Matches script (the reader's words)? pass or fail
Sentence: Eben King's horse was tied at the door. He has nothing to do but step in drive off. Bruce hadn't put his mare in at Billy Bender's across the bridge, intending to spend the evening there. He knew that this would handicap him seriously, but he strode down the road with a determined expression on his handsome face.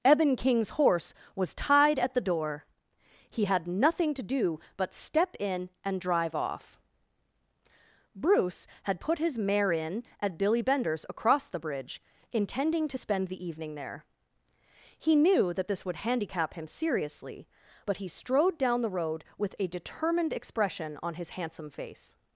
fail